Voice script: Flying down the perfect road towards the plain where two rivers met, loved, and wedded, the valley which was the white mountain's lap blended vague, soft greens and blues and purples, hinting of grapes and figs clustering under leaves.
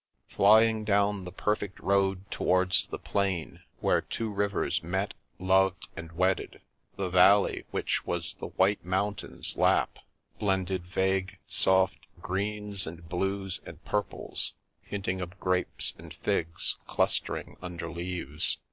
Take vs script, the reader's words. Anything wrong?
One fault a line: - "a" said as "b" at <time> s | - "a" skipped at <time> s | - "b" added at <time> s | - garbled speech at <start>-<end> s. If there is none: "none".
none